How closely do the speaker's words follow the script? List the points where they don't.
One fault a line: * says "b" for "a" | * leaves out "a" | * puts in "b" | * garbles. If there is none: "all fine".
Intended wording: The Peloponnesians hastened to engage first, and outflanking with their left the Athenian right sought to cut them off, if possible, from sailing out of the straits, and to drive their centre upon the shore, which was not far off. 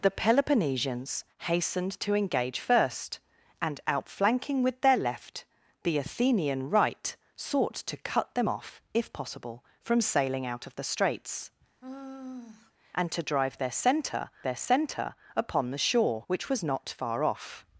* puts in "their centre"